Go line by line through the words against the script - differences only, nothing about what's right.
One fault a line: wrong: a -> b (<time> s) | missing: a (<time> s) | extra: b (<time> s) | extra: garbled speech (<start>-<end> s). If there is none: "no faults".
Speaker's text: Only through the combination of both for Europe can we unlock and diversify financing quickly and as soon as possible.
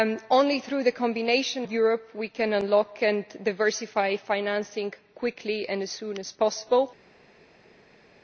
missing: of both for (1.7 s)